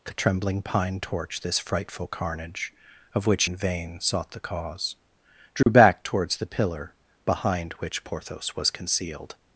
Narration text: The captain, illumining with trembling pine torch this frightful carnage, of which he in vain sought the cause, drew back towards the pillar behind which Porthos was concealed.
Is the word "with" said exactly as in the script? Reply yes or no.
no